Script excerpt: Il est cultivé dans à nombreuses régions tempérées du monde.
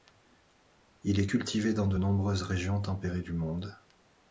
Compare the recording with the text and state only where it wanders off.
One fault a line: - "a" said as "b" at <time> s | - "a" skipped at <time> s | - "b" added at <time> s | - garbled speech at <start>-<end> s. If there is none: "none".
- "à" said as "de" at 1.9 s